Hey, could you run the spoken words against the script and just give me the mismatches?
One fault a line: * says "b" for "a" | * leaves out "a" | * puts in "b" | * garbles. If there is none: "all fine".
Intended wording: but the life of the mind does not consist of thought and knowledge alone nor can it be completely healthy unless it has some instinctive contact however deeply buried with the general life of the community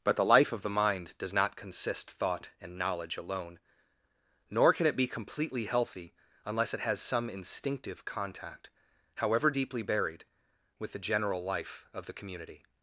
* leaves out "of"